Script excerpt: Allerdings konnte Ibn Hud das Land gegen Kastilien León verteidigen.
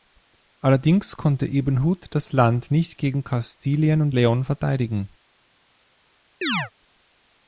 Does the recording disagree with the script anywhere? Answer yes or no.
yes